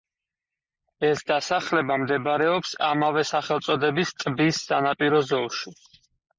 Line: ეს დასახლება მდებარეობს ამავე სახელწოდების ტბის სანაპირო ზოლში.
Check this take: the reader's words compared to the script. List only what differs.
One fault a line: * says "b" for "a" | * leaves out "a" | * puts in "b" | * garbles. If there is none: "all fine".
all fine